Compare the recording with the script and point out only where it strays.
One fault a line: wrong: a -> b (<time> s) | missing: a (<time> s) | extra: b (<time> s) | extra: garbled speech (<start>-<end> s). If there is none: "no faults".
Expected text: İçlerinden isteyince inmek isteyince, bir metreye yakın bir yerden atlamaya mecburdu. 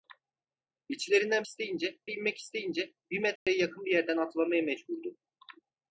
no faults